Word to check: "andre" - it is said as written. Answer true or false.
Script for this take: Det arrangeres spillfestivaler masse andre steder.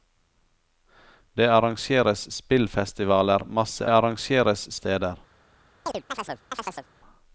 false